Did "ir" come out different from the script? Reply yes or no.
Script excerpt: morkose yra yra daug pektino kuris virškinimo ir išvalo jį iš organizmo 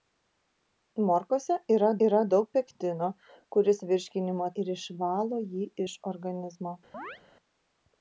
no